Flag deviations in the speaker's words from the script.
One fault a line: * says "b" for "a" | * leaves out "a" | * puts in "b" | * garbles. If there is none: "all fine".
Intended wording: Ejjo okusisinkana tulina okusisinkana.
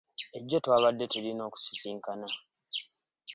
* says "twabadde" for "okusisinkana"